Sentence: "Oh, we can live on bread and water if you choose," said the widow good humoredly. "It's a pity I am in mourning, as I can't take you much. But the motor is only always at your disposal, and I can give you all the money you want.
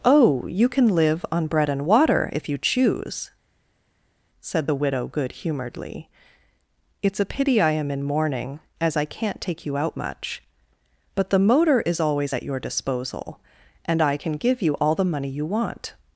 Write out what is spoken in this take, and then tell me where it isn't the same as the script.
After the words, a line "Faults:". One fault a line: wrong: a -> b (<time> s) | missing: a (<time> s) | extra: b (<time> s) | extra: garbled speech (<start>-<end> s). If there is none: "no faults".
"Oh, you can live on bread and water if you choose," said the widow good humoredly. "It's a pity I am in mourning, as I can't take you out much. But the motor is always at your disposal, and I can give you all the money you want.
Faults:
wrong: we -> you (0.5 s)
extra: out (9.8 s)
missing: only (12.0 s)